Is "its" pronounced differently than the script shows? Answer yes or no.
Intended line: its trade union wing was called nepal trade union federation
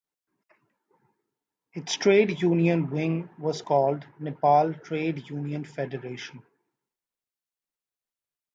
no